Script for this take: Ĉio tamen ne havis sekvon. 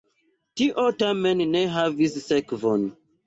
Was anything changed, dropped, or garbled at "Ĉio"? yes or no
yes